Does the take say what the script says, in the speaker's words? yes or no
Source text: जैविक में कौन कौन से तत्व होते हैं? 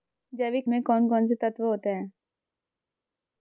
yes